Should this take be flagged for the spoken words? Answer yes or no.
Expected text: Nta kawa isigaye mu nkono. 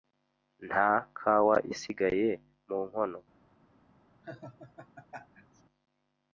no